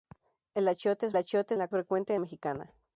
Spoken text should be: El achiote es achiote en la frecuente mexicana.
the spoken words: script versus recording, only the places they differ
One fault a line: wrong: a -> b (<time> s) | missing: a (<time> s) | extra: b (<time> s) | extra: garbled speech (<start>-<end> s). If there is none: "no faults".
no faults